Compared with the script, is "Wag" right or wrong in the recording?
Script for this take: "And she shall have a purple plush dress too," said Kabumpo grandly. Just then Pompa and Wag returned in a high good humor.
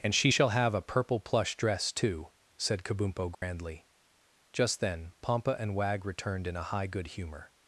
right